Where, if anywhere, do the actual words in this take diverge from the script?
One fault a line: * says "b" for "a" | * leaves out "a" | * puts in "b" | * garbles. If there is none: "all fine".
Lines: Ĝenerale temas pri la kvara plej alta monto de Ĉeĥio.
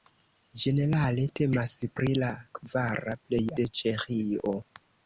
* leaves out "alta monto"